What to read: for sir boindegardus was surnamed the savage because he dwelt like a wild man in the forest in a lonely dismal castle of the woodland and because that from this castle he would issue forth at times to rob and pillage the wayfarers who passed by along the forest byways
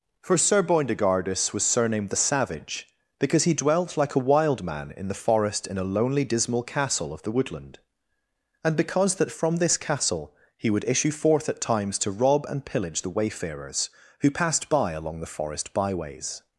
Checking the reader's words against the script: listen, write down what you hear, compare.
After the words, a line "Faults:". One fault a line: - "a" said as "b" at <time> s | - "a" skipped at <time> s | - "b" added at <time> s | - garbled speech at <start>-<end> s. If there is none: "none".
for sir boindegardus was surnamed the savage because he dwelt like a wild man in the forest in a lonely dismal castle of the woodland and because that from this castle he would issue forth at times to rob and pillage the wayfarers who passed by along the forest byways
Faults:
none